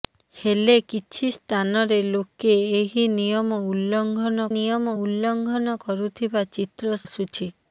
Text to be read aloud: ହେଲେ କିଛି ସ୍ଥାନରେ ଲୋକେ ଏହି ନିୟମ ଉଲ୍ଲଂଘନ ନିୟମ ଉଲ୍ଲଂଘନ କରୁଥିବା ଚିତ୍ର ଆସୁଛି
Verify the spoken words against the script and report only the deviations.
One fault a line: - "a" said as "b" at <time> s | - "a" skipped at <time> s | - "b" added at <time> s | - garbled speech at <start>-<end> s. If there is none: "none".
none